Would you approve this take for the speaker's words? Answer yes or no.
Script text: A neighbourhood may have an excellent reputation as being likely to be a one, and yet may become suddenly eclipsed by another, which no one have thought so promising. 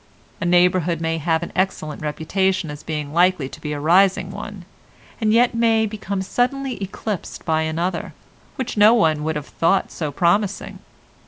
no